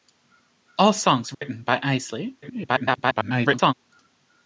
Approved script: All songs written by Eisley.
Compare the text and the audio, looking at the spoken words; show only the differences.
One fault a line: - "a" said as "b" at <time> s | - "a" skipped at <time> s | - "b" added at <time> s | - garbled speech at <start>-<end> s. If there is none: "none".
- garbled speech at 2.4-3.7 s